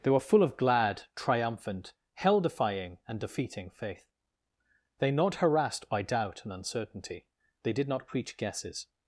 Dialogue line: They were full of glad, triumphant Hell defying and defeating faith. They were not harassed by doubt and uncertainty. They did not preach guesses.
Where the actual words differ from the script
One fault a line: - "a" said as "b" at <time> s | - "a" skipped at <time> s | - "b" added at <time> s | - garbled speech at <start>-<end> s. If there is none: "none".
- "were" skipped at 5.1 s